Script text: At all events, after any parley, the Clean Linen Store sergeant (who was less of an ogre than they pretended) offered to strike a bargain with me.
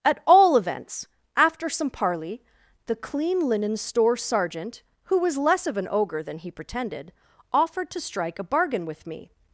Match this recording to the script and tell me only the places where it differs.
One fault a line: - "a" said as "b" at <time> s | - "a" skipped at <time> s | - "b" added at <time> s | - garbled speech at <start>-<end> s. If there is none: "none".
- "any" said as "some" at 1.7 s
- "they" said as "he" at 6.4 s